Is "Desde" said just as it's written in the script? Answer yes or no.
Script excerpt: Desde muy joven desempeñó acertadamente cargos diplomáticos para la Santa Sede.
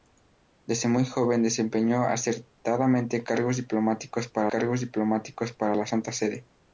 yes